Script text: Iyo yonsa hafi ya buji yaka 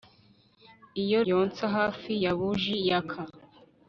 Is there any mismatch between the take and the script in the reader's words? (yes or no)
no